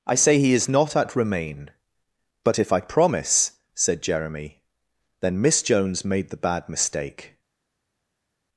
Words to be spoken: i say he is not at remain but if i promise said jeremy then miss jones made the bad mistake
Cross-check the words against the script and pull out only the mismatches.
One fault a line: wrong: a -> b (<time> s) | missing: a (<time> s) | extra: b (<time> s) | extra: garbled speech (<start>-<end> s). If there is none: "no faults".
no faults